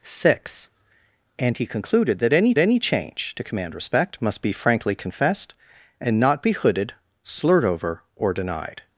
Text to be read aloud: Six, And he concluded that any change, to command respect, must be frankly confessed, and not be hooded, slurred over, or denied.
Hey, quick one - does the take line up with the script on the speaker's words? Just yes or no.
no